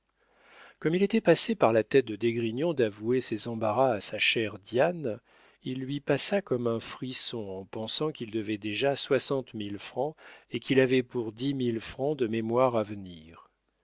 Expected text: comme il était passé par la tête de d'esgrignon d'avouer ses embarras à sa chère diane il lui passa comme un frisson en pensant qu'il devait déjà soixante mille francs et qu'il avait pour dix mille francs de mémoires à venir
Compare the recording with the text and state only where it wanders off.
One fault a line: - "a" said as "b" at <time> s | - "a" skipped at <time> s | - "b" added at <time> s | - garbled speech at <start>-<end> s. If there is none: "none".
none